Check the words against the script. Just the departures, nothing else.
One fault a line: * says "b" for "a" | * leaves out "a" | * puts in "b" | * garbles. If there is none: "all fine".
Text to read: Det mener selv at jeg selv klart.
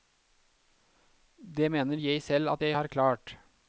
* puts in "jeg"
* says "har" for "selv"